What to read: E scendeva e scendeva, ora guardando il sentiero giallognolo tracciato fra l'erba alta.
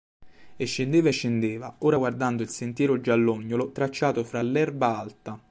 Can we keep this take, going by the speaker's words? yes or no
yes